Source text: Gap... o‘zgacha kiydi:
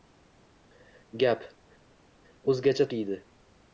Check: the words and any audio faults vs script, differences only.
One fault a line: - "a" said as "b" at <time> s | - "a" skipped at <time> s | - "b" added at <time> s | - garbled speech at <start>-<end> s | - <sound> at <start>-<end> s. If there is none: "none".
none